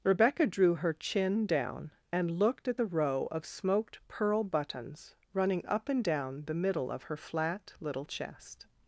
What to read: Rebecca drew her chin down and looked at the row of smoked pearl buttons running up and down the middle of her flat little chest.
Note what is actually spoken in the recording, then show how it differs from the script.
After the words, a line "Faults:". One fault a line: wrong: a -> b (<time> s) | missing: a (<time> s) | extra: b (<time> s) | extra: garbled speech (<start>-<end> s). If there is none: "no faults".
Rebecca drew her chin down and looked at the row of smoked pearl buttons running up and down the middle of her flat little chest.
Faults:
no faults